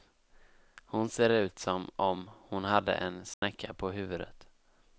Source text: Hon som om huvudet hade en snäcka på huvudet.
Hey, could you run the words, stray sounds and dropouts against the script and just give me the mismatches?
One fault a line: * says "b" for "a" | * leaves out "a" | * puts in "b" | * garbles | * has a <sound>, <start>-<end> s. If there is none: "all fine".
* puts in "ser ut"
* says "hon" for "huvudet"
* has a dropout, 3.3-3.4 s